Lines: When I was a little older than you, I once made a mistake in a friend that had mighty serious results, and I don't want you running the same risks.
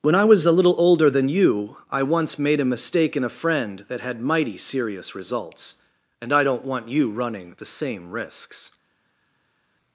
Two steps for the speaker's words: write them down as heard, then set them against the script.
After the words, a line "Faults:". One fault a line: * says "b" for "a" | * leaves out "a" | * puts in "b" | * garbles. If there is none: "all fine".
When I was a little older than you, I once made a mistake in a friend that had mighty serious results, and I don't want you running the same risks.
Faults:
all fine